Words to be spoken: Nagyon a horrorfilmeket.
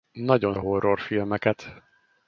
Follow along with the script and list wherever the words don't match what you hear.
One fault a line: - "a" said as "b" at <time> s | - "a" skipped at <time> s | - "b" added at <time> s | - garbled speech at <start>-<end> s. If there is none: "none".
none